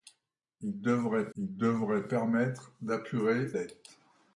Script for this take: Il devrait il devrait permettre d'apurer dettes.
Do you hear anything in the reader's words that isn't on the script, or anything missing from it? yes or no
no